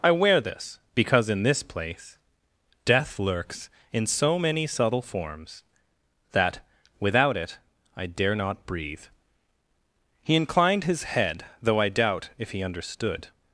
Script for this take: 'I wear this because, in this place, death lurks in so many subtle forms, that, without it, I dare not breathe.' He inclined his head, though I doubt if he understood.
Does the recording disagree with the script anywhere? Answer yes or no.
no